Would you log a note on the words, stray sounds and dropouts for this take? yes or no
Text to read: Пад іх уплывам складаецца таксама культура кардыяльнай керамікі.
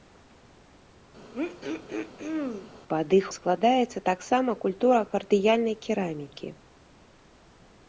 yes